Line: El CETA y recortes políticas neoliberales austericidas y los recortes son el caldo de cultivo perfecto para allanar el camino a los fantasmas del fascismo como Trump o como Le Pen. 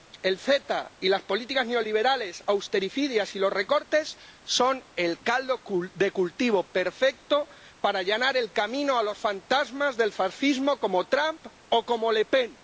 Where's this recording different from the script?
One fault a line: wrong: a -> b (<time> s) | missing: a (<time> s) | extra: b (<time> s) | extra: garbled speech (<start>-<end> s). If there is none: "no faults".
wrong: recortes -> las (1.1 s)